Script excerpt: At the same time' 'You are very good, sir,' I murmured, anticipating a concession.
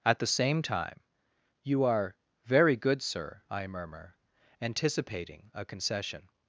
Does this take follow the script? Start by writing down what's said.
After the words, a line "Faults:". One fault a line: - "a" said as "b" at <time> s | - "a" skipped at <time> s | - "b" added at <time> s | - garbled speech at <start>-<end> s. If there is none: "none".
At the same time' 'You are very good, sir,' I murmur, anticipating a concession.
Faults:
- "murmured" said as "murmur" at 3.7 s